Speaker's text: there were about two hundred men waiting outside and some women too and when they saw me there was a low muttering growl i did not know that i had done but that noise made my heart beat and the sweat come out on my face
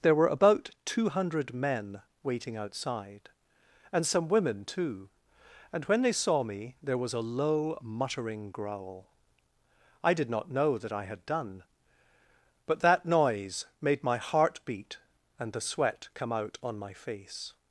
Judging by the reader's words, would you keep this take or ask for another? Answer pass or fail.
pass